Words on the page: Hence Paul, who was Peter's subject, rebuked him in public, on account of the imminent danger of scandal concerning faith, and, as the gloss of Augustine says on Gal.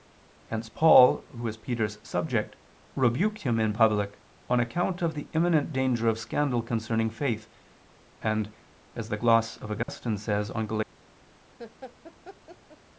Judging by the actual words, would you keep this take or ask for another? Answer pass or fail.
pass